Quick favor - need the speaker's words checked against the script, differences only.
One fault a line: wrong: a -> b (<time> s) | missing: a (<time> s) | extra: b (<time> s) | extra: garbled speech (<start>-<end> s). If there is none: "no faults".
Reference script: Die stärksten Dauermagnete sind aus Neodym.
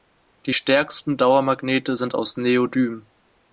no faults